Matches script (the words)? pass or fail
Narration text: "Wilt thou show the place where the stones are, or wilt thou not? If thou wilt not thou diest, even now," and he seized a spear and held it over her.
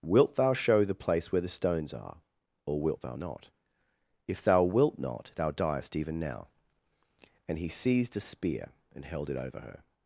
pass